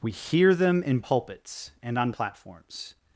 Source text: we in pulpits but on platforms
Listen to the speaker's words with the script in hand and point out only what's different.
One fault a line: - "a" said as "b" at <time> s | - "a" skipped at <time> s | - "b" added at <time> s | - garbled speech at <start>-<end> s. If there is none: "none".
- "hear them" added at 0.1 s
- "but" said as "and" at 1.8 s